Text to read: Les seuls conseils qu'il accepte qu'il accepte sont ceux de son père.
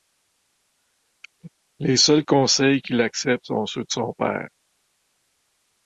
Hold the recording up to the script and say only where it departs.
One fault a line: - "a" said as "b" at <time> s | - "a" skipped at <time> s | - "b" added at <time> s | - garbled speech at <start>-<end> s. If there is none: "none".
- "qu'il accepte" skipped at 3.5 s